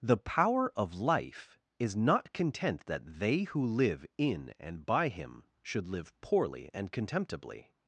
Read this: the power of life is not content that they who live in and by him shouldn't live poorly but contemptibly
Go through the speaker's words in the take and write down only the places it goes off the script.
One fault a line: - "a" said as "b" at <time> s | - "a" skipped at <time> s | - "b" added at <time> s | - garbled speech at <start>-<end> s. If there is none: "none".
- "shouldn't" said as "should" at 5.6 s
- "but" said as "and" at 6.7 s